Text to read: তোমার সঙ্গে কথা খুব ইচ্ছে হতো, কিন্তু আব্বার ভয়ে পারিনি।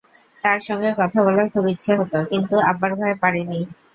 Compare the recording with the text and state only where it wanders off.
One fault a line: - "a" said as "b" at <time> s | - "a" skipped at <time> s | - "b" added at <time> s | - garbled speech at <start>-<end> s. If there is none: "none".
- "তোমার" said as "তার" at 0.4 s
- "বলার" added at 1.2 s